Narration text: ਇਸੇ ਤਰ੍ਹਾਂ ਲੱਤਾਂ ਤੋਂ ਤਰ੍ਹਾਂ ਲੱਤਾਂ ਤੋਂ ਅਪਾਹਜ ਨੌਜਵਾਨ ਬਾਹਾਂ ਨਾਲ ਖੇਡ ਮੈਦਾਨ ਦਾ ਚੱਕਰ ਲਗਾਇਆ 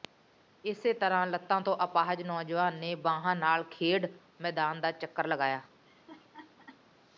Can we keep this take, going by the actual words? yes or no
no